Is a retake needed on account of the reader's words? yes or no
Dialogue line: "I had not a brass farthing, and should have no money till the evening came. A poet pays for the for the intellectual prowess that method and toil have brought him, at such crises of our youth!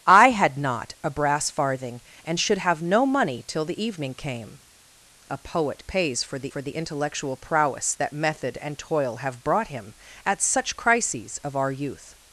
no